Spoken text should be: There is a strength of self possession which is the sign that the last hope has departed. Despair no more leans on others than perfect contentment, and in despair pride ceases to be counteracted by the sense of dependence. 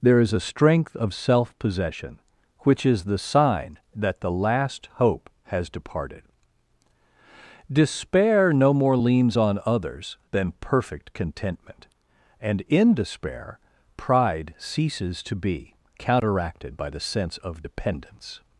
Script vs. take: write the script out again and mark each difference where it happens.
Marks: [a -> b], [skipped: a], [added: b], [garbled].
There is a strength of self possession which is the sign that the last hope has departed. Despair no more leans on others than perfect contentment, and in despair pride ceases to be counteracted by the sense of dependence.